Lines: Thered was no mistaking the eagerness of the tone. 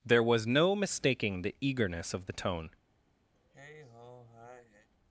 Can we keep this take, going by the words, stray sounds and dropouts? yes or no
no